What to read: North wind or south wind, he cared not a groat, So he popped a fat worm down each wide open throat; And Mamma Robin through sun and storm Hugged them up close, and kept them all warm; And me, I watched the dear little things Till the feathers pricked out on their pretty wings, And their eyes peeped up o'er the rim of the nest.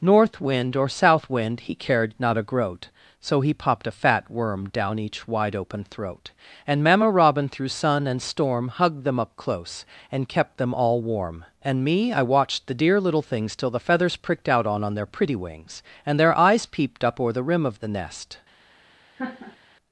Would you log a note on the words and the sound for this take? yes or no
yes